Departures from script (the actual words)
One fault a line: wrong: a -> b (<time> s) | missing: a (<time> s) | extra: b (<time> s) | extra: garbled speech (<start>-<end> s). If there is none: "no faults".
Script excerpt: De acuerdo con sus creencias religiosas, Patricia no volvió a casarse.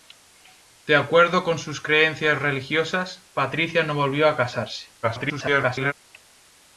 extra: garbled speech (5.0-5.9 s)